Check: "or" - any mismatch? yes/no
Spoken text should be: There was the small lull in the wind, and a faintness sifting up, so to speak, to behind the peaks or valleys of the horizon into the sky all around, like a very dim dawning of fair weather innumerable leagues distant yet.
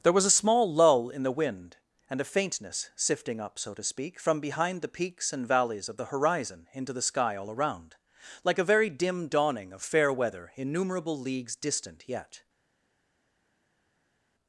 yes